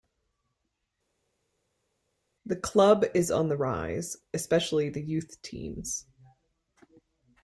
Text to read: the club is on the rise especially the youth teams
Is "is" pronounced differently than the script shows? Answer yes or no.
no